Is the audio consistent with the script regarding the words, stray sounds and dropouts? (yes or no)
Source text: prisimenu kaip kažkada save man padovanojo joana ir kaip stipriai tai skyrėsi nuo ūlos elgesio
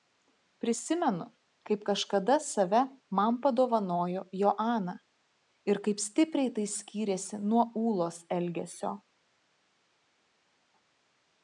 yes